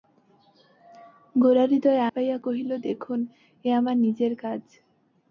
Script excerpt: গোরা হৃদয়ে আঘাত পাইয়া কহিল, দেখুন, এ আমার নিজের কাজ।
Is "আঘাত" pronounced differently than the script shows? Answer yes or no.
yes